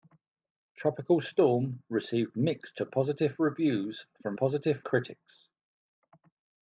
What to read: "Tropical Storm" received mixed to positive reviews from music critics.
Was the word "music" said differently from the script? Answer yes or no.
yes